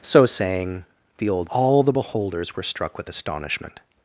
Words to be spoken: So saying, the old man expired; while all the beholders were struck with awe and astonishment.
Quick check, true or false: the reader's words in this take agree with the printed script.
false